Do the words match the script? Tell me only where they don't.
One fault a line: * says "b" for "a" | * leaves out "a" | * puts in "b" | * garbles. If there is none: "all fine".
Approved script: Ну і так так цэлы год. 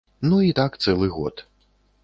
* leaves out "так"